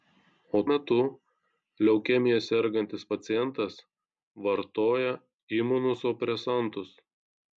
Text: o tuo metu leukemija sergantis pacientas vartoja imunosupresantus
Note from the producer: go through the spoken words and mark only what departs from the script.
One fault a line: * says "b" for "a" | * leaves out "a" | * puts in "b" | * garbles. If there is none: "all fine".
* leaves out "tuo"